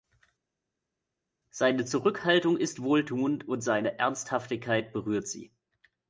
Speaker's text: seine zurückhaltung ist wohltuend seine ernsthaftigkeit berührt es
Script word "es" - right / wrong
wrong